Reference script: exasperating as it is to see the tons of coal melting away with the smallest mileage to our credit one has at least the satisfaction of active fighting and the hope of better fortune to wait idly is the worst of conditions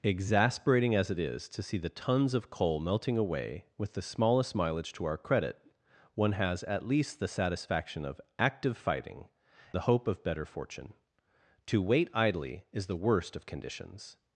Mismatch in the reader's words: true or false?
true